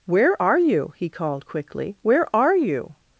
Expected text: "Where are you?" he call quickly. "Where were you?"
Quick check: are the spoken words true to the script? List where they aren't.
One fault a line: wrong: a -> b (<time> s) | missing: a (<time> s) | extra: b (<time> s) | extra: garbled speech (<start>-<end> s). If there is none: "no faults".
wrong: call -> called (1.1 s)
wrong: were -> are (2.4 s)